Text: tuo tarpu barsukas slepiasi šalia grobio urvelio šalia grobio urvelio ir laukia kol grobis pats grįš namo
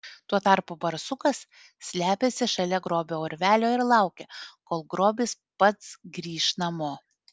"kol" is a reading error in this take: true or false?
false